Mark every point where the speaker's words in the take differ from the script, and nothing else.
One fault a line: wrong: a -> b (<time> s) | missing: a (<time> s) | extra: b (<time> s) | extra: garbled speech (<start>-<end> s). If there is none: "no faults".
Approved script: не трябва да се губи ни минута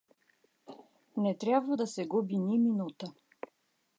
no faults